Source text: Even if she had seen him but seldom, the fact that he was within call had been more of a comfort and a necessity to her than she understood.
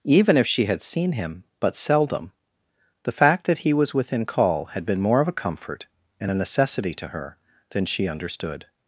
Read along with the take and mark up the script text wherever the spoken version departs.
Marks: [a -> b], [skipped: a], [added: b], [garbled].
Even if she had seen him but seldom, the fact that he was within call had been more of a comfort and a necessity to her than she understood.